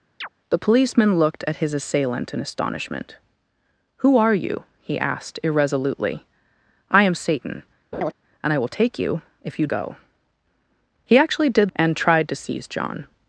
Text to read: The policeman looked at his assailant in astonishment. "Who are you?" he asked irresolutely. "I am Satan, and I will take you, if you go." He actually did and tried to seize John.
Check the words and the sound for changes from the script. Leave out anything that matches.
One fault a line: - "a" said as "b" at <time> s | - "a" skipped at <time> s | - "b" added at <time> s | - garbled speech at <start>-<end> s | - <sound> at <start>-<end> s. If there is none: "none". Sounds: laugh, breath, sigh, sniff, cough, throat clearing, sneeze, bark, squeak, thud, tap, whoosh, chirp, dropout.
- chirp at 0.2-0.3 s
- laugh at 7.9-8.1 s